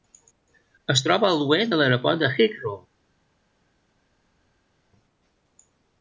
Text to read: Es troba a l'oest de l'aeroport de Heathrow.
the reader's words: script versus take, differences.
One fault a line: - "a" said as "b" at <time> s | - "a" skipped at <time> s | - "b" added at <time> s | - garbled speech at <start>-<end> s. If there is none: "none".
none